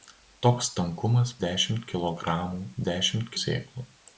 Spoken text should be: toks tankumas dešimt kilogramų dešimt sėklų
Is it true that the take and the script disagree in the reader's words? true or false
false